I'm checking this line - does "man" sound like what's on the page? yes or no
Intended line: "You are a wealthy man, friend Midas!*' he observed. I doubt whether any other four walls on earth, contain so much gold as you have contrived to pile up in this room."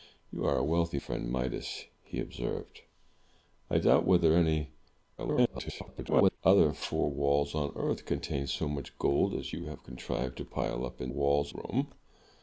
no